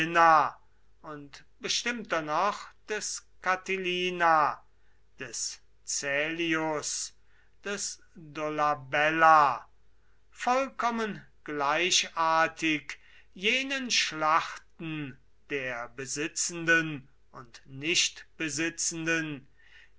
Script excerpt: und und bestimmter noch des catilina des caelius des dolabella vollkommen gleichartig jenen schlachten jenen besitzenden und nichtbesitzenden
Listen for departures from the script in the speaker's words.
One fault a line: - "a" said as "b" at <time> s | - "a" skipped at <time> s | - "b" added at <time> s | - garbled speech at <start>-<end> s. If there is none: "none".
- "und" skipped at 1.4 s
- "jenen" said as "der" at 15.5 s